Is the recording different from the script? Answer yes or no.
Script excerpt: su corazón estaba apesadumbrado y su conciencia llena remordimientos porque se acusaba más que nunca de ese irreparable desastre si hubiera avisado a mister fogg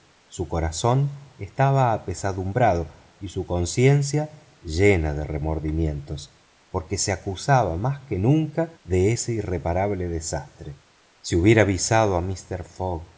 yes